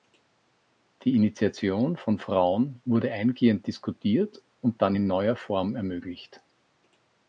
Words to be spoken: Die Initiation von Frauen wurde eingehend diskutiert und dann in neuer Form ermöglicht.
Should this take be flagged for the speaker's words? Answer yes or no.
no